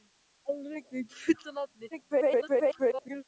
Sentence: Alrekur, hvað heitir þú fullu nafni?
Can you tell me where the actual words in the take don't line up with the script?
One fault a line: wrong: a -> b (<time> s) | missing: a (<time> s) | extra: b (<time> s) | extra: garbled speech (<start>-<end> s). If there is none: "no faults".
missing: hvað heitir (1.1 s)
extra: garbled speech (1.9-3.2 s)